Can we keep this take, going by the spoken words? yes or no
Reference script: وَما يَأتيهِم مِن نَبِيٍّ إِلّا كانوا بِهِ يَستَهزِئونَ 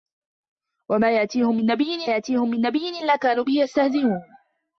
no